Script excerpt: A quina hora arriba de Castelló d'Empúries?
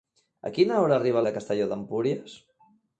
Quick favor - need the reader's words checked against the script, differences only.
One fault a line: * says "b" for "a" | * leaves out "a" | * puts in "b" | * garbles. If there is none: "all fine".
all fine